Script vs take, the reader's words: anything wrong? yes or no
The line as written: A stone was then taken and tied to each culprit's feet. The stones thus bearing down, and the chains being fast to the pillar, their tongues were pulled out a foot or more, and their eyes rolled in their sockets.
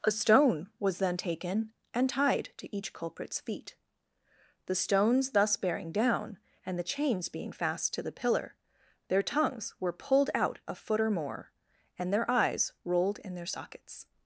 no